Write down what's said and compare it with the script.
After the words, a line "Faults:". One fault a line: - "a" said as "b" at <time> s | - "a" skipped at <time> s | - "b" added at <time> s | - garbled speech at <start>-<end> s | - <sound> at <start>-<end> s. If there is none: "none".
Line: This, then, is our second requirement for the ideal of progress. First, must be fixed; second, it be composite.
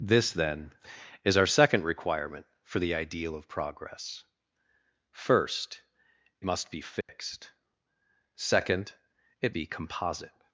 This, then, is our second requirement for the ideal of progress. First, must be fixed; second, it be composite.
Faults:
- dropout at 7.0-7.1 s